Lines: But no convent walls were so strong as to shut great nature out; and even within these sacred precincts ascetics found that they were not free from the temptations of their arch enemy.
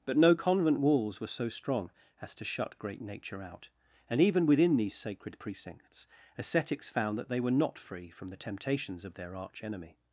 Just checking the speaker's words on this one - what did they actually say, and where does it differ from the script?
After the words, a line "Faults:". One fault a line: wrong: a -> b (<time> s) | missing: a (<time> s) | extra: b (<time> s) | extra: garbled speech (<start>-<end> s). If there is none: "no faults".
But no convent walls were so strong as to shut great nature out; and even within these sacred precincts ascetics found that they were not free from the temptations of their arch enemy.
Faults:
no faults